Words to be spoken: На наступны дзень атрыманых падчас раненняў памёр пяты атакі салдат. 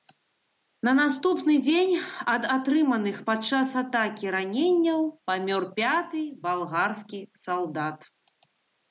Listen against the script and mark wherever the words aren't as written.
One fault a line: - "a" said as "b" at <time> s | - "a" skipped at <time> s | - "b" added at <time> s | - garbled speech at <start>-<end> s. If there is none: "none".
- "ад" added at 2.3 s
- "атакі" added at 3.8 s
- "атакі" said as "балгарскі" at 6.5 s